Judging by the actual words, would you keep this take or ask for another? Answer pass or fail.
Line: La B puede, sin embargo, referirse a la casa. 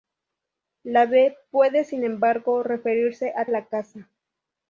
pass